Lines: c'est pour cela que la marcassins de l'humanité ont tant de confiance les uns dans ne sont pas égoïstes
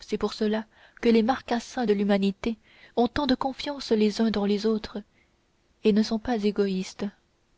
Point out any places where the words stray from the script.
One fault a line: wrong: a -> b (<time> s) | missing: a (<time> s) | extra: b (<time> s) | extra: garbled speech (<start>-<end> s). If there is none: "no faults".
wrong: la -> les (1.1 s)
extra: les autres et (4.5 s)